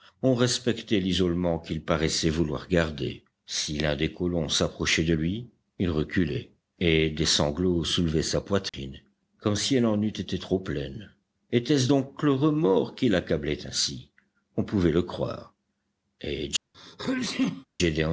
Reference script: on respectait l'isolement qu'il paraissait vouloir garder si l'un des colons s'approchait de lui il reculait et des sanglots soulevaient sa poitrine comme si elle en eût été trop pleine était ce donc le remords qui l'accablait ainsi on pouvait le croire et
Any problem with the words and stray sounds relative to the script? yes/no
yes